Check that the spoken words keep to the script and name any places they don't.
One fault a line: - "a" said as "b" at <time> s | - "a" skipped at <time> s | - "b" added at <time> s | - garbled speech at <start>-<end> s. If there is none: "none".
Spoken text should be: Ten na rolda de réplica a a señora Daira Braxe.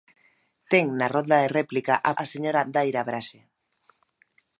none